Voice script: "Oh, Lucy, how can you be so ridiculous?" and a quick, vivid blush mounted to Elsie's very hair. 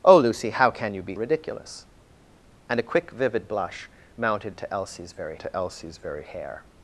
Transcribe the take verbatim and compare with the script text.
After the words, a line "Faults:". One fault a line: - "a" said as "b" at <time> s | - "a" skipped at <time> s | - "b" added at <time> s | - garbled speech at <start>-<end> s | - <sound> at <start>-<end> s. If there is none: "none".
"Oh, Lucy, how can you be ridiculous?" and a quick, vivid blush mounted to Elsie's very to Elsie's very hair.
Faults:
- "so" skipped at 1.1 s
- "to Elsie's very" added at 5.4 s